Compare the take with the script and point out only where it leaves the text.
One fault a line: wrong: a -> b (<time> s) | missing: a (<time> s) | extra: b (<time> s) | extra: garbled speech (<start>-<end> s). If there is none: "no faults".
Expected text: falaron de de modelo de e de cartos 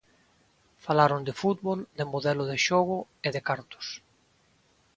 extra: fútbol (1.4 s)
extra: xogo (2.7 s)